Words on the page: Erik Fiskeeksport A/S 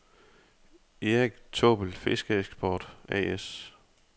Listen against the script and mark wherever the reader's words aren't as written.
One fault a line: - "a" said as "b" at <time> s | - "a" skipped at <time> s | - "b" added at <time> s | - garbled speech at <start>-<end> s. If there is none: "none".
- "Taabbel" added at 1.5 s